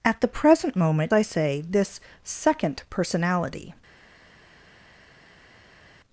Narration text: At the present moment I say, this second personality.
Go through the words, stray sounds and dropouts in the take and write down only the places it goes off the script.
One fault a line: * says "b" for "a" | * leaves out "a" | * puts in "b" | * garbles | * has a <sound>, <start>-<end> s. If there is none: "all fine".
all fine